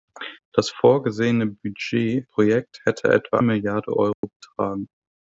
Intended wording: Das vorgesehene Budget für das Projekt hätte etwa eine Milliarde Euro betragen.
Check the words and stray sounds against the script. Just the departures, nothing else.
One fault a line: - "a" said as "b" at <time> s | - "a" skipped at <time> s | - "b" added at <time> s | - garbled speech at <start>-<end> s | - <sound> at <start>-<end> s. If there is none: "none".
- "für das" skipped at 2.2 s
- "eine" skipped at 3.4 s
- dropout at 4.1-4.2 s